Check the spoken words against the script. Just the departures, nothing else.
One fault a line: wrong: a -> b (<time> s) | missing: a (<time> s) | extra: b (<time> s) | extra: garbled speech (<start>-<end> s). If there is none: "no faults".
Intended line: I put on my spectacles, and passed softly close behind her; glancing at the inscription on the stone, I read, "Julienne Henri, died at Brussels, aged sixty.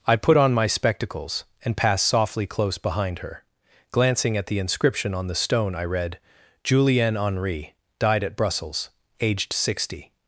no faults